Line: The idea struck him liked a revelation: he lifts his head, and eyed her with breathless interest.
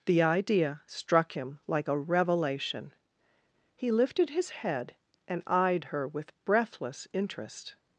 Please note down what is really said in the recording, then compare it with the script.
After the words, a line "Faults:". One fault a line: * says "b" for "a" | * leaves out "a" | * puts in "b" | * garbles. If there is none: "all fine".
The idea struck him like a revelation: he lifted his head, and eyed her with breathless interest.
Faults:
* says "like" for "liked"
* says "lifted" for "lifts"